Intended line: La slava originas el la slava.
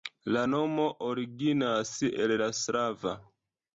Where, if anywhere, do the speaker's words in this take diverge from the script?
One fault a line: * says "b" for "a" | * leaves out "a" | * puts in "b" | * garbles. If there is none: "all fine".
* says "nomo" for "slava"